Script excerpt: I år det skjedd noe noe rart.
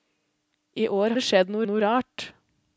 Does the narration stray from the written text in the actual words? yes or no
no